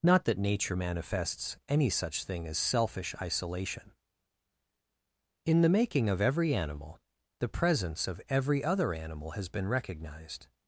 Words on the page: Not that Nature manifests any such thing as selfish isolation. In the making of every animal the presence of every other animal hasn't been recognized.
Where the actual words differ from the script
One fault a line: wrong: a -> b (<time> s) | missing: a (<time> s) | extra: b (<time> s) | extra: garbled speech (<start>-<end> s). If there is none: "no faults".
wrong: hasn't -> has (9.3 s)